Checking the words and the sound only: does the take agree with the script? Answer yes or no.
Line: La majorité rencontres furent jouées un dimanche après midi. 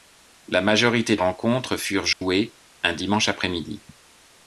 no